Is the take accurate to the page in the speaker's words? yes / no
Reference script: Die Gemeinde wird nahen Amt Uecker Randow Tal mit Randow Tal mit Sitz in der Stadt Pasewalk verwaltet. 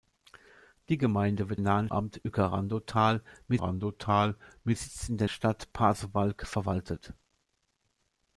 yes